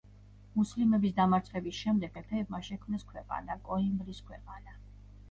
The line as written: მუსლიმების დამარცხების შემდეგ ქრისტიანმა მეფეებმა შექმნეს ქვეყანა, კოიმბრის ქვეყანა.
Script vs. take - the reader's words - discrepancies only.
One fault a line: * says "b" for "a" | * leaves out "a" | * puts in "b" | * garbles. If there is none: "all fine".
* leaves out "ქრისტიანმა"